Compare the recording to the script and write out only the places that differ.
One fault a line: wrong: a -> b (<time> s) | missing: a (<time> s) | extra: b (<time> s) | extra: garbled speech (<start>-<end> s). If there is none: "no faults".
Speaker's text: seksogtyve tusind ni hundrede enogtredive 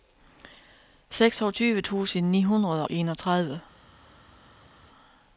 no faults